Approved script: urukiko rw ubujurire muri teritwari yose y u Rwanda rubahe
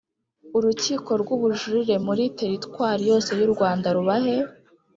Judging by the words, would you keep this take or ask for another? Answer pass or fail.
pass